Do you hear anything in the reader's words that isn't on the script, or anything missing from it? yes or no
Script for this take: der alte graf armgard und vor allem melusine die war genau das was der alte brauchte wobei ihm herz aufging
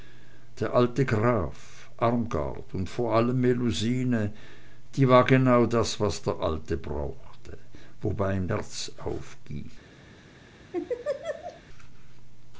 no